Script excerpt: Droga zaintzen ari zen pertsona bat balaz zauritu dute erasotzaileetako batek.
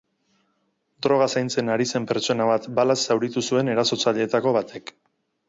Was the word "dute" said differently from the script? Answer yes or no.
yes